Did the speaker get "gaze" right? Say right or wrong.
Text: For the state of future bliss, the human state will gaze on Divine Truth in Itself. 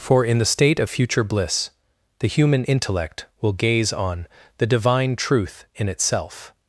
right